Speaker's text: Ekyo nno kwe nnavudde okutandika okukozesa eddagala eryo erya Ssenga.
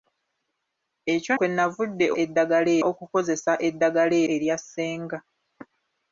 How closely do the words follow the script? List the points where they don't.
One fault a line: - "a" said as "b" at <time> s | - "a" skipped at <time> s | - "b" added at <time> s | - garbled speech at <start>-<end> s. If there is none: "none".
- "nno" skipped at 1.3 s
- "okutandika" said as "eddagala" at 2.2 s
- "eryo" skipped at 4.2 s